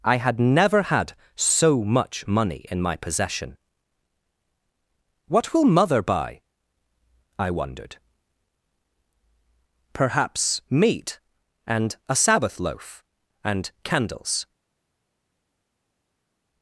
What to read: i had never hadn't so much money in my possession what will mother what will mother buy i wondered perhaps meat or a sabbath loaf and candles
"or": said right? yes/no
no